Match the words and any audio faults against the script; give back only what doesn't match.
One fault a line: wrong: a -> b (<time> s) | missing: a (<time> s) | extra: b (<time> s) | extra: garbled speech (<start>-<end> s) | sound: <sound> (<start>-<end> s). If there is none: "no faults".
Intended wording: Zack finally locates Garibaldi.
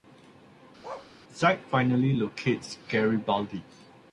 sound: bark (0.8-1.1 s)